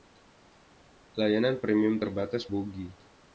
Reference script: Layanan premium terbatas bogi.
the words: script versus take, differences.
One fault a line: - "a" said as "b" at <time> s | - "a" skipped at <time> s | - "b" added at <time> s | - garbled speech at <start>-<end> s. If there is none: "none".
none